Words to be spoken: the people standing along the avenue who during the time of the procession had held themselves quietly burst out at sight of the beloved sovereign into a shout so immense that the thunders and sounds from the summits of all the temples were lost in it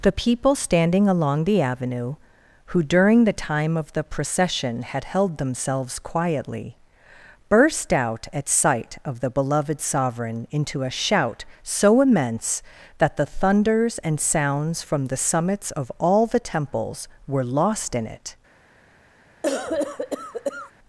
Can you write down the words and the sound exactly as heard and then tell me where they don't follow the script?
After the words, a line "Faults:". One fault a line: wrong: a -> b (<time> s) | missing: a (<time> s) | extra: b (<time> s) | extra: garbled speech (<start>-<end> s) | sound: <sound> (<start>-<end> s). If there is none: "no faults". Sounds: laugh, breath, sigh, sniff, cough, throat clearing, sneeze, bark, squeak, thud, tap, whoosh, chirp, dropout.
the people standing along the avenue who during the time of the procession had held themselves quietly burst out at sight of the beloved sovereign into a shout so immense that the thunders and sounds from the summits of all the temples were lost in it
Faults:
sound: cough (19.4-20.7 s)